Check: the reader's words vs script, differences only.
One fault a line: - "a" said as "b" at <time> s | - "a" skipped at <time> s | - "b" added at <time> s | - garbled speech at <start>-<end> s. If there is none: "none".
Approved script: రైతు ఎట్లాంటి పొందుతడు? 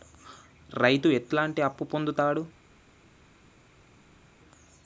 - "అప్పు" added at 1.6 s